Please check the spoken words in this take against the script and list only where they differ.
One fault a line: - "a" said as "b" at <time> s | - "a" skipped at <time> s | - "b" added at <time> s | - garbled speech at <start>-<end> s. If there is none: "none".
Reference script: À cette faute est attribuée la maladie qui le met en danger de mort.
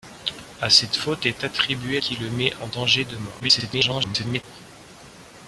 - "la maladie" skipped at 2.0 s
- garbled speech at 3.4-4.4 s